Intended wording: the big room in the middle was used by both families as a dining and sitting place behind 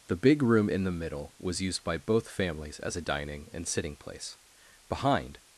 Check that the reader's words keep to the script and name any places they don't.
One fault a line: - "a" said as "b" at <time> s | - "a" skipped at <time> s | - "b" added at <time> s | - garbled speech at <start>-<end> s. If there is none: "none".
none